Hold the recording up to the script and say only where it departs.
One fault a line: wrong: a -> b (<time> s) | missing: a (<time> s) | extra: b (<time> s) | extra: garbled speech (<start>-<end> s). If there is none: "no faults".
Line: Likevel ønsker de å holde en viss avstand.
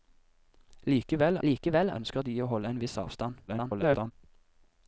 extra: likevel (1.4 s)
extra: garbled speech (3.5-4.1 s)